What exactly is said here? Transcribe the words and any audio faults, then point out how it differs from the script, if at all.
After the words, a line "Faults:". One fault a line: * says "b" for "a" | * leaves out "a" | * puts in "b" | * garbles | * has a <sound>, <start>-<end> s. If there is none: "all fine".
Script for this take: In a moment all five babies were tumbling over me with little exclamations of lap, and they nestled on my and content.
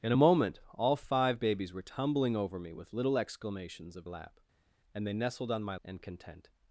In a moment all five babies were tumbling over me with little exclamations of lap, and they nestled on my and content.
Faults:
all fine